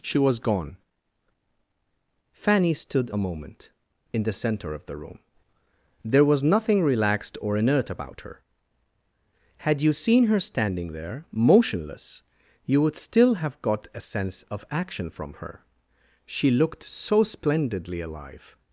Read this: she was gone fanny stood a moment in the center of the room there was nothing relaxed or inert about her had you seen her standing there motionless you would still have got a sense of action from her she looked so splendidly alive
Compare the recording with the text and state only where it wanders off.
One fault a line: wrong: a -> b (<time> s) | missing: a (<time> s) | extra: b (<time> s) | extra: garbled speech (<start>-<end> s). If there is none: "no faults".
no faults